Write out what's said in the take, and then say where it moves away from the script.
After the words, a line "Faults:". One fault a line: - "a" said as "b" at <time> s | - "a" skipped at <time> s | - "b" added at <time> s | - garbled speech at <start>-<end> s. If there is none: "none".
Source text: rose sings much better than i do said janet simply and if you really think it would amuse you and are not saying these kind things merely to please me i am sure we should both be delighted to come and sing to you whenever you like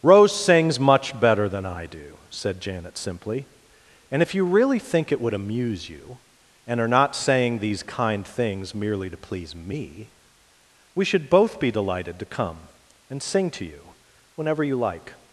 rose sings much better than i do said janet simply and if you really think it would amuse you and are not saying these kind things merely to please me we should both be delighted to come and sing to you whenever you like
Faults:
- "i am sure" skipped at 10.1 s